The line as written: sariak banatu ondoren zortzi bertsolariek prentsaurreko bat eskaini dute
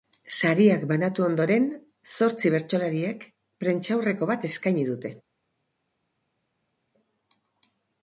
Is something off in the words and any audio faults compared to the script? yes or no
no